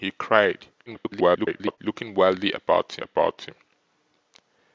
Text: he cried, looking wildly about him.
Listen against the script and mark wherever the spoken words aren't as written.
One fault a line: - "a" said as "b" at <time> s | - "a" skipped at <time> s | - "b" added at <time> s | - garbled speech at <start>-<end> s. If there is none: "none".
- garbled speech at 0.9-1.8 s
- "about" added at 3.0 s